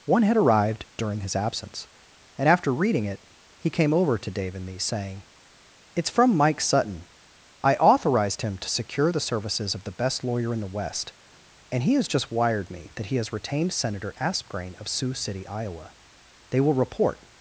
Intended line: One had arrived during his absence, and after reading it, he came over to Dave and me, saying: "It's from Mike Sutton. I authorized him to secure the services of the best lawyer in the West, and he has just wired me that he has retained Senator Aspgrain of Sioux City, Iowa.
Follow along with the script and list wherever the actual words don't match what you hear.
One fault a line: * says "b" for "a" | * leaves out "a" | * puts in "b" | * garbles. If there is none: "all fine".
* puts in "They will report"